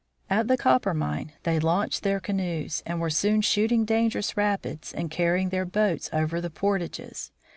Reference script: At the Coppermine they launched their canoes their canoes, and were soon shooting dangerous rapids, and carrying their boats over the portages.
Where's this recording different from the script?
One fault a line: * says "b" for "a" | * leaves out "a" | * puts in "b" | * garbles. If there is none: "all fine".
* leaves out "their canoes"